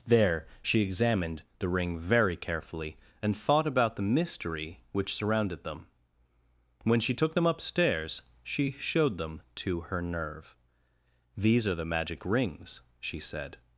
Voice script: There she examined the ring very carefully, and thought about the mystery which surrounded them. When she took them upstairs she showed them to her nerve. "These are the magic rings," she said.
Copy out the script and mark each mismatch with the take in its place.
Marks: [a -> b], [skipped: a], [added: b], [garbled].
There she examined the ring very carefully, and thought about the mystery which surrounded them. When she took them upstairs she showed them to her nerve. "These are the magic rings," she said.